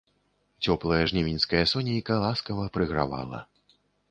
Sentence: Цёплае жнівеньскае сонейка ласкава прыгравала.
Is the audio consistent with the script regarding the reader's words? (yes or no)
yes